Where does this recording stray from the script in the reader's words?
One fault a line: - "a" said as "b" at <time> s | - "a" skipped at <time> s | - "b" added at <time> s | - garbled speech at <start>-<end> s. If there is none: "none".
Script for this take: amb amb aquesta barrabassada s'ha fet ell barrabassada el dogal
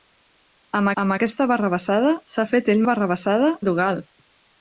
none